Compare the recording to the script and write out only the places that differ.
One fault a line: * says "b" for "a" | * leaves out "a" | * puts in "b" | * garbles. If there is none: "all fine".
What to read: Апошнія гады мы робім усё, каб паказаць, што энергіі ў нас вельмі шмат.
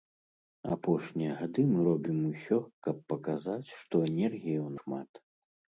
* leaves out "нас вельмі"